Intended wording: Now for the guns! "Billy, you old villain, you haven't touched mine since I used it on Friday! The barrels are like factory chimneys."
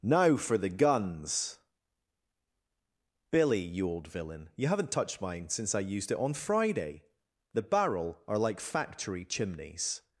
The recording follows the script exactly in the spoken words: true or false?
false